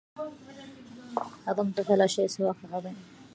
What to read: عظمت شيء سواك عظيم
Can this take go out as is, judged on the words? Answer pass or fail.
fail